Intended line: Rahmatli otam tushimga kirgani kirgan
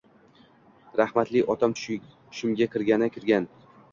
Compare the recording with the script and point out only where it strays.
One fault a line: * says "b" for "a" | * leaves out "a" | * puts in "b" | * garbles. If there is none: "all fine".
all fine